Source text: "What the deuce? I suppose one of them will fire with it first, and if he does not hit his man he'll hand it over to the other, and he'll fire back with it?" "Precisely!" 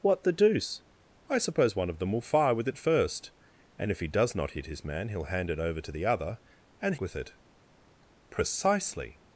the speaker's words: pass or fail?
fail